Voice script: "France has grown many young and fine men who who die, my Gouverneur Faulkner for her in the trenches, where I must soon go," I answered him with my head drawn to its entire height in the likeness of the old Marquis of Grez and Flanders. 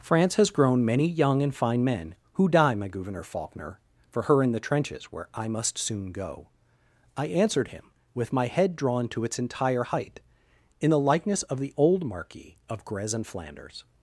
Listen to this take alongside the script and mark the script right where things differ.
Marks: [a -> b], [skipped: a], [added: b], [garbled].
"France has grown many young and fine men who [skipped: who] die, my Gouverneur Faulkner for her in the trenches, where I must soon go," I answered him with my head drawn to its entire height in the likeness of the old Marquis of Grez and Flanders.